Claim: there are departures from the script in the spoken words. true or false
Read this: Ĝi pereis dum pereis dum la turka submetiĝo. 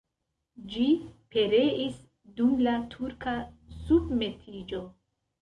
true